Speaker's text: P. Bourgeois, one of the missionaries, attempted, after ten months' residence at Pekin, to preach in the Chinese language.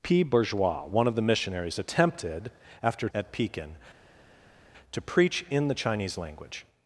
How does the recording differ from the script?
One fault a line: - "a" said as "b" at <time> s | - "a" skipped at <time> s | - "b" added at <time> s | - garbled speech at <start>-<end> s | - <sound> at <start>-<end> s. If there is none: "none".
- "ten months residence" skipped at 3.1 s